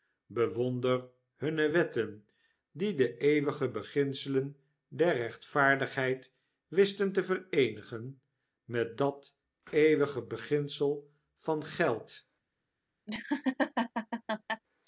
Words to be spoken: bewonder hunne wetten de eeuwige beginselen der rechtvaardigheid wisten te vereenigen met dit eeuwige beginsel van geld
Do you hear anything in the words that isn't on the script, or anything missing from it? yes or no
yes